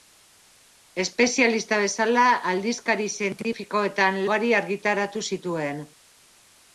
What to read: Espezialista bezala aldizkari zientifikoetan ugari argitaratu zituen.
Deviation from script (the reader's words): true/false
false